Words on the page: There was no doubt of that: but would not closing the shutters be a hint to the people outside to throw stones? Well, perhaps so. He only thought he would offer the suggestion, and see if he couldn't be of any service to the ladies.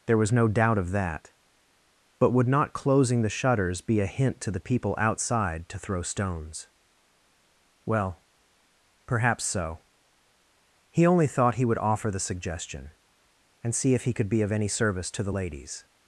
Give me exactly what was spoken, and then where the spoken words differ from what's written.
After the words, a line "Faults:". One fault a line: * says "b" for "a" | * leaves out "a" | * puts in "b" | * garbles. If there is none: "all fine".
There was no doubt of that: but would not closing the shutters be a hint to the people outside to throw stones? Well, perhaps so. He only thought he would offer the suggestion, and see if he could be of any service to the ladies.
Faults:
* says "could" for "couldn't"